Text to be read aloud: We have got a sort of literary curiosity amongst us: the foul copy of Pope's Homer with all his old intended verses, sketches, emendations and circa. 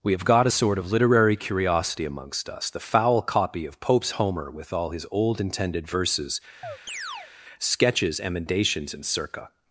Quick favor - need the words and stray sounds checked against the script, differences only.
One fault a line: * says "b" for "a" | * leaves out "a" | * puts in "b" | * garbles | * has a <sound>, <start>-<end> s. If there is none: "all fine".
* has a chirp, 6.6-7.3 s